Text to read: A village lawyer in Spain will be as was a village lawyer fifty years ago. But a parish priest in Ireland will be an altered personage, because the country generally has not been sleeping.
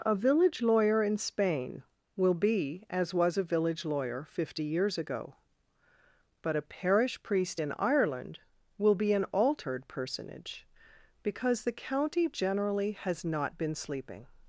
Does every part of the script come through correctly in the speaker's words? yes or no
no